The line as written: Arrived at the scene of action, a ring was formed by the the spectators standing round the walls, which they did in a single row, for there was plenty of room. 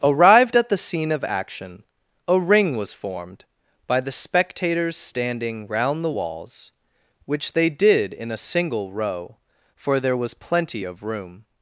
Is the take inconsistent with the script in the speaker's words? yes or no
yes